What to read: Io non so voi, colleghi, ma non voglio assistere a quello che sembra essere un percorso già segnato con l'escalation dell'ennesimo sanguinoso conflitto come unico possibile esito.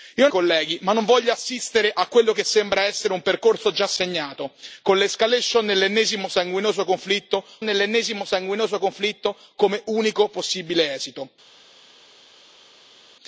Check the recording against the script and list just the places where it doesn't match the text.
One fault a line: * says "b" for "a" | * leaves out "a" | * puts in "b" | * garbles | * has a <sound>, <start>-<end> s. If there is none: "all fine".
* leaves out "non so voi"
* puts in "dell'ennesimo sanguinoso conflitto"